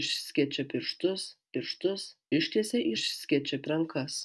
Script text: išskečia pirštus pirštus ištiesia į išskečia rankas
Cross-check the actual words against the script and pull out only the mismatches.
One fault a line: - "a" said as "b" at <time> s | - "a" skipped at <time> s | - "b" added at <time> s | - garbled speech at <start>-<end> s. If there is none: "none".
none